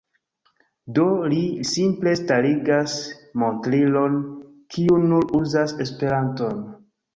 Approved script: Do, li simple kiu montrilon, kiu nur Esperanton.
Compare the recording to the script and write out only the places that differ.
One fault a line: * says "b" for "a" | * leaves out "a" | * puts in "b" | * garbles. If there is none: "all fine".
* says "starigas" for "kiu"
* puts in "uzas"